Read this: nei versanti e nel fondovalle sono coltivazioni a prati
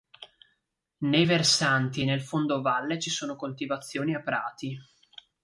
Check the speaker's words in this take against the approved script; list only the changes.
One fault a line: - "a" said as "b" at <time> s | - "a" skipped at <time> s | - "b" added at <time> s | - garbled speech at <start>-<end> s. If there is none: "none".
- "ci" added at 3.0 s